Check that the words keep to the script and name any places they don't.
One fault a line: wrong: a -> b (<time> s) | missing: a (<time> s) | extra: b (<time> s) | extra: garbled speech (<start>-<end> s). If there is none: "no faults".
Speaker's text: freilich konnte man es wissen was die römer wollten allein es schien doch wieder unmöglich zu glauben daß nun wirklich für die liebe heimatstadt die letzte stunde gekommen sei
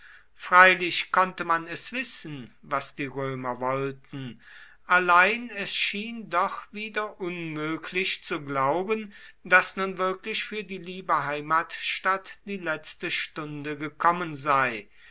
no faults